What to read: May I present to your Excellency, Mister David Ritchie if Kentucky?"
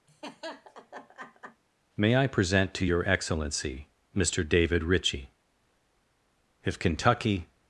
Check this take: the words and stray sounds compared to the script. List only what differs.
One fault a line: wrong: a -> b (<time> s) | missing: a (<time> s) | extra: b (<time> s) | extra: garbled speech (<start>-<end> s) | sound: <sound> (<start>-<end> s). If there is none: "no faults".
sound: laugh (0.1-1.6 s)